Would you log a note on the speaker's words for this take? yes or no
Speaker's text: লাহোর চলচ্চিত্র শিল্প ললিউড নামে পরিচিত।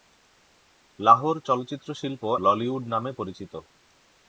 no